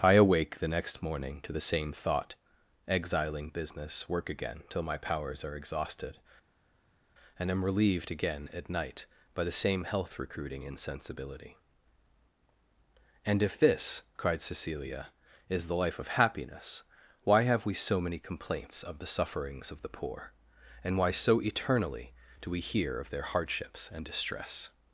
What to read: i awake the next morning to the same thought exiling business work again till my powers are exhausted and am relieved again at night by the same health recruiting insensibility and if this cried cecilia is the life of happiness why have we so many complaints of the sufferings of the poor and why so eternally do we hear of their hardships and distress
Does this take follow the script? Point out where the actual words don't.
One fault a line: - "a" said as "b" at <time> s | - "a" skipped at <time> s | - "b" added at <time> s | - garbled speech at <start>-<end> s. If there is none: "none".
none